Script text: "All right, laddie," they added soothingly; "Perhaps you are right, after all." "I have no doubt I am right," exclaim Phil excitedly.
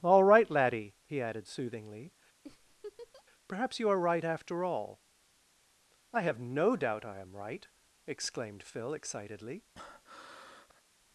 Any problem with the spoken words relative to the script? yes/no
yes